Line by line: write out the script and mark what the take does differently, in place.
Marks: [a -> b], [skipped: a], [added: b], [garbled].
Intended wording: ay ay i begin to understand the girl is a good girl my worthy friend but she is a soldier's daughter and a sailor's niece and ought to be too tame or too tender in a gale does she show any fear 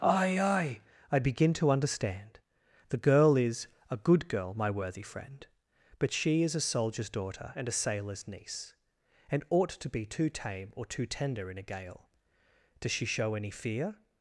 ay ay i begin to understand the girl is a good girl my worthy friend but she is a soldier's daughter and a sailor's niece and ought to be too tame or too tender in a gale does she show any fear